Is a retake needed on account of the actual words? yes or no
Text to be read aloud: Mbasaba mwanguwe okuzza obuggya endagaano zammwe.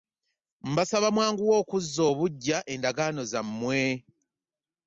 no